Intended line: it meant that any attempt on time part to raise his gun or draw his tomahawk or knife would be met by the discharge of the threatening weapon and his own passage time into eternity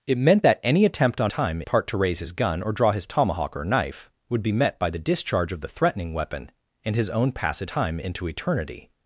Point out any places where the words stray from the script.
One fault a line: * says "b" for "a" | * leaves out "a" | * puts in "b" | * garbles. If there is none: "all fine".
all fine